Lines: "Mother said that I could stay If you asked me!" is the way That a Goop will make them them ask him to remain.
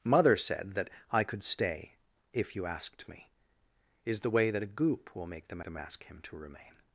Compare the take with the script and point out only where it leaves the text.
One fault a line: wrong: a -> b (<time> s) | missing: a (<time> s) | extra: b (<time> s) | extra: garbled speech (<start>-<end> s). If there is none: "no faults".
no faults